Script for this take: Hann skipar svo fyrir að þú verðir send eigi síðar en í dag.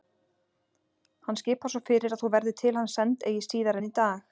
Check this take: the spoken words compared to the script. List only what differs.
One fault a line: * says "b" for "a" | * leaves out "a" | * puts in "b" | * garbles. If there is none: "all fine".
* puts in "til hans"